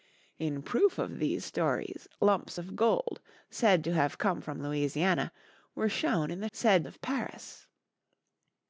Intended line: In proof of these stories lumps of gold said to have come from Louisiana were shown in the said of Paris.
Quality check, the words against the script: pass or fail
pass